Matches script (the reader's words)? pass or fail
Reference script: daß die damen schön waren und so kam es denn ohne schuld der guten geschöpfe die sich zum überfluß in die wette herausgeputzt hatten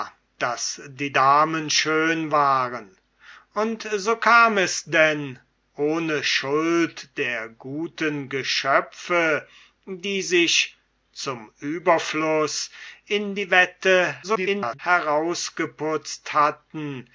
fail